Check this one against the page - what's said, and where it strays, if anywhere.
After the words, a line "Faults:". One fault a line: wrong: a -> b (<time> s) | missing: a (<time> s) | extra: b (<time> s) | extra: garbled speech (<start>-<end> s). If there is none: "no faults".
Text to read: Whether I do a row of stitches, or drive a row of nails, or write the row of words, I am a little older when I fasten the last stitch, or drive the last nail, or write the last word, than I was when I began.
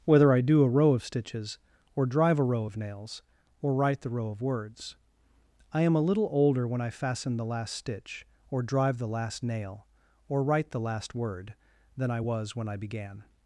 Whether I do a row of stitches, or drive a row of nails, or write the row of words, I am a little older when I fasten the last stitch, or drive the last nail, or write the last word, than I was when I began.
Faults:
no faults